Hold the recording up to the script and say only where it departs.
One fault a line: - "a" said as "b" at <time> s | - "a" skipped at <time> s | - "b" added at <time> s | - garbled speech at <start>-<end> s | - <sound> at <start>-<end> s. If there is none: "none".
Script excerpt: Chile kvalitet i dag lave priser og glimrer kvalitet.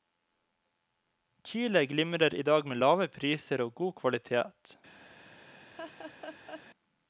- "kvalitet" said as "glimrer" at 1.9 s
- "med" added at 2.7 s
- "glimrer" said as "god" at 3.8 s
- laugh at 5.7-6.6 s